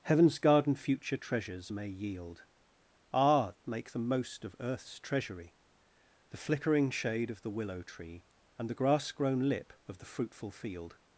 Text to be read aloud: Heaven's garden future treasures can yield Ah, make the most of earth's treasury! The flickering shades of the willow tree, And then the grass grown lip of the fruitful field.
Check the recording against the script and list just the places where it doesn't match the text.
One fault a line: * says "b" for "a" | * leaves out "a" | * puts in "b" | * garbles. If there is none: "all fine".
* says "may" for "can"
* says "shade" for "shades"
* leaves out "then"